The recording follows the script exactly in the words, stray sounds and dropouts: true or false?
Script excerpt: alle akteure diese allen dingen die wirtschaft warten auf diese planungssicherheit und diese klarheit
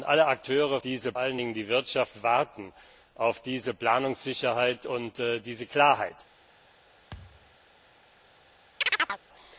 false